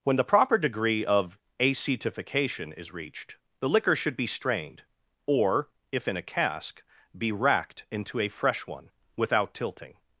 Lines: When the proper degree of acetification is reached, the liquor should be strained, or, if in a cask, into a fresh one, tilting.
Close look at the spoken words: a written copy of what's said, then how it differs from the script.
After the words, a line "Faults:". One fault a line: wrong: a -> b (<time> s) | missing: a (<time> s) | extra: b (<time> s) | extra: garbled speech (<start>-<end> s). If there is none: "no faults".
When the proper degree of acetification is reached, the liquor should be strained, or, if in a cask, be racked into a fresh one, without tilting.
Faults:
extra: be racked (7.2 s)
extra: without (9.2 s)